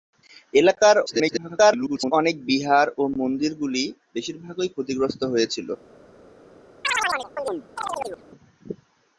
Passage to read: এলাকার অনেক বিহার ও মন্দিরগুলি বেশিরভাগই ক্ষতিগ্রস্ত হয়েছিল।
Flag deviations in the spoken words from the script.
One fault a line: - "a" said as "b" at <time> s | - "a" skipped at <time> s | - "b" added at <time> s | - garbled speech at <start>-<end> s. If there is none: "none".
- garbled speech at 1.1-2.1 s